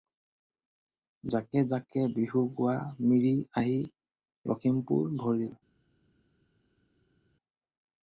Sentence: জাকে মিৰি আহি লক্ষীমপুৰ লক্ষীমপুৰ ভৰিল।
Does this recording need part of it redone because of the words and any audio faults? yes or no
yes